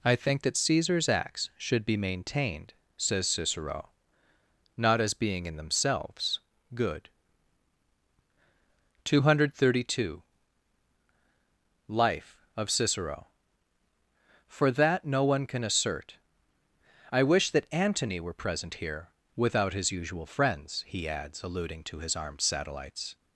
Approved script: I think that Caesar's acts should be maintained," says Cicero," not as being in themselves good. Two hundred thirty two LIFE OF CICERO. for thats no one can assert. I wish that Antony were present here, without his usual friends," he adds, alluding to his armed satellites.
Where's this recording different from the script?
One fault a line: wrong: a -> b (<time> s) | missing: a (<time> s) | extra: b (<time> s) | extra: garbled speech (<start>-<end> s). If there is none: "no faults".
wrong: thats -> that (14.7 s)